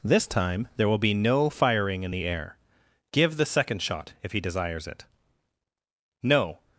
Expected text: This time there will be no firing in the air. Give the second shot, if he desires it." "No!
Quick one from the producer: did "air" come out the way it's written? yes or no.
yes